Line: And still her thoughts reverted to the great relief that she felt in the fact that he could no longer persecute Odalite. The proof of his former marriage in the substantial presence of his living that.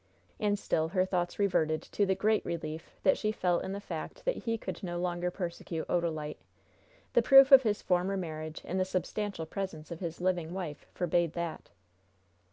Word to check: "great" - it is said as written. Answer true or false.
true